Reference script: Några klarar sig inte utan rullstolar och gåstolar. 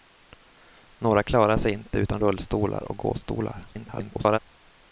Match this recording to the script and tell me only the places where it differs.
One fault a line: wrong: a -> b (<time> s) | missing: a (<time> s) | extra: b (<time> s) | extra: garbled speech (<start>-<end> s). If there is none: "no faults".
extra: garbled speech (3.7-4.4 s)